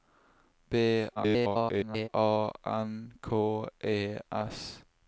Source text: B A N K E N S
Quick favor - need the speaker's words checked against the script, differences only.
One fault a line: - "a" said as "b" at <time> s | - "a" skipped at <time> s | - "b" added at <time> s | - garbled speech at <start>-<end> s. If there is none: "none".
- garbled speech at 1.2-2.1 s
- "N" skipped at 4.2 s